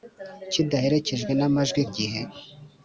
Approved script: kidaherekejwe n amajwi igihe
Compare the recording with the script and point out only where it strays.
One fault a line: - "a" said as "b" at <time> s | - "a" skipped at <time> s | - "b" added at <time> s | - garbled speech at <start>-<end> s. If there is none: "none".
none